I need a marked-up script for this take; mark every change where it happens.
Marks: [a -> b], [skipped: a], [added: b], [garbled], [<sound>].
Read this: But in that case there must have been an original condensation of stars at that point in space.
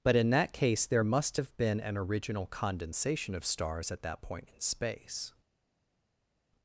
But in that case there must have been an original condensation of stars at that point in space.